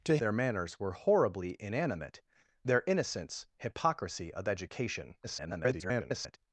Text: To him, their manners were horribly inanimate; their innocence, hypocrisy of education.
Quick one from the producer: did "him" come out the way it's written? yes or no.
no